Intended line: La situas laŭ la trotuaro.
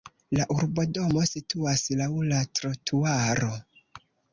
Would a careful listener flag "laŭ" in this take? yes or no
no